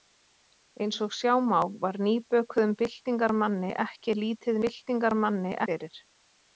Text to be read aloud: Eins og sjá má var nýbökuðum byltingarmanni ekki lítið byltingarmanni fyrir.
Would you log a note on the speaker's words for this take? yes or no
no